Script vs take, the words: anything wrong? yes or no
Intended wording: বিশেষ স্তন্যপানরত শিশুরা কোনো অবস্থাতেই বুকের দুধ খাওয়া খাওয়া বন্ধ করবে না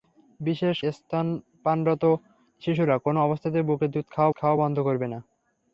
no